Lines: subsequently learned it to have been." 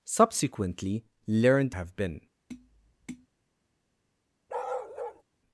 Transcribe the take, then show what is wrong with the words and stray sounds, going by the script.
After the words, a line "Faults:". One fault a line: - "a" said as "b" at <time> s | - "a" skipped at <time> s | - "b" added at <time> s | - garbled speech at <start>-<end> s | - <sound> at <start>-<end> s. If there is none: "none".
subsequently learned have been."
Faults:
- "it to" skipped at 1.8 s
- tap at 2.5-3.3 s
- bark at 4.5-5.2 s